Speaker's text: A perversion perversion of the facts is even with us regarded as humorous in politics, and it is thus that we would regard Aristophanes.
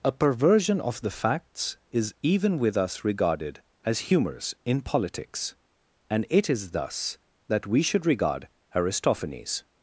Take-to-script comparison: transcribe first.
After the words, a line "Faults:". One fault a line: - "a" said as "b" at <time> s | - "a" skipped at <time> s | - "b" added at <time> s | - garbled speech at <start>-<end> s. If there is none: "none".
A perversion of the facts is even with us regarded as humorous in politics, and it is thus that we should regard Aristophanes.
Faults:
- "perversion" skipped at 0.8 s
- "would" said as "should" at 7.8 s